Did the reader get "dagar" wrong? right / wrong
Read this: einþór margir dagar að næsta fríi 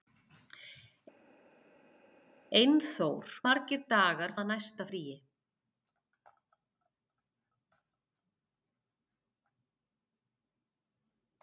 right